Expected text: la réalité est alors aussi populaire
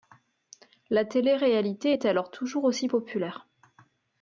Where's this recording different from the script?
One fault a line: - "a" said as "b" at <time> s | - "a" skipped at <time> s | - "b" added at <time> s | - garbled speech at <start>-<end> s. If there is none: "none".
- "télé" added at 1.1 s
- "toujours" added at 2.3 s